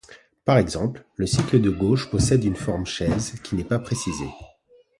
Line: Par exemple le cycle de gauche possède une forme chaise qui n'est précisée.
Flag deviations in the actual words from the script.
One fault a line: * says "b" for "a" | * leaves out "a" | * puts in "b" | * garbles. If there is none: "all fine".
* puts in "pas"